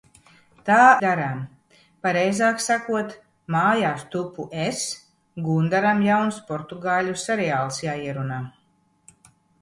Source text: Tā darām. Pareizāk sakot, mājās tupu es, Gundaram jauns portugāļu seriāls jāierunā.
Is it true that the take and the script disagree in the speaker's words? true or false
false